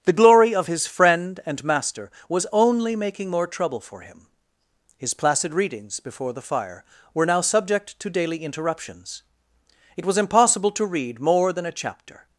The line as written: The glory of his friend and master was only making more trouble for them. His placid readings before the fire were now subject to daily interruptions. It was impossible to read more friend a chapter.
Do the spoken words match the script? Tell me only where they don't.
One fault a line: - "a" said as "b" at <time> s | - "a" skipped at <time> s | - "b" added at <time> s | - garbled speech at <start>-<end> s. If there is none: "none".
- "them" said as "him" at 4.0 s
- "friend" said as "than" at 11.5 s